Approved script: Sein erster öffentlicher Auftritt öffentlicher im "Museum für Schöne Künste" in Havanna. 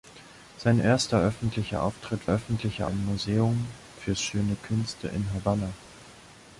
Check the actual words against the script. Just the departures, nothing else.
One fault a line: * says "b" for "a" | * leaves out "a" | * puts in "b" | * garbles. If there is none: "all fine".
all fine